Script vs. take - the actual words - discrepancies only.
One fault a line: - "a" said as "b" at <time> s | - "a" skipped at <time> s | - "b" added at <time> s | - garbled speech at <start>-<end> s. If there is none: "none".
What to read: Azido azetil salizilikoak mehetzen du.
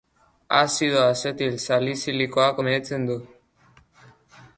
none